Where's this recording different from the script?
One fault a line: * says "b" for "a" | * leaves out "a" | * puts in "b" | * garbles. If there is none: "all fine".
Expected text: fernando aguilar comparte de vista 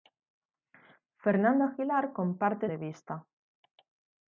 all fine